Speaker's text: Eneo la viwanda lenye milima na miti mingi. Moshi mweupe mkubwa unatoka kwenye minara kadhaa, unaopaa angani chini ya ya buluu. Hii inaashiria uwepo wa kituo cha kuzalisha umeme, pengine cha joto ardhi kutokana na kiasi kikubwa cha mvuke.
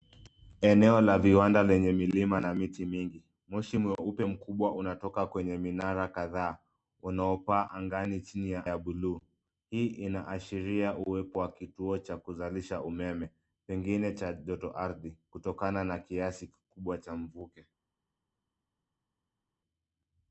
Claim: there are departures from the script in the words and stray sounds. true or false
false